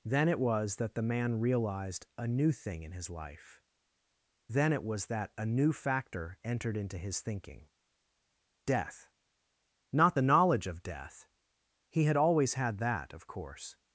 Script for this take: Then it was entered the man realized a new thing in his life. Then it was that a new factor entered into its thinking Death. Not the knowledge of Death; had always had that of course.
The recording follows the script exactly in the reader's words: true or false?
false